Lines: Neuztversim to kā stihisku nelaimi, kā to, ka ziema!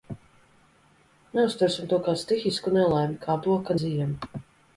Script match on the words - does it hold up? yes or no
yes